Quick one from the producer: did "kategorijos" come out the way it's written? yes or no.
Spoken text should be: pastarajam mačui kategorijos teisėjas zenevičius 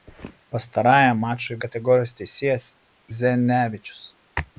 yes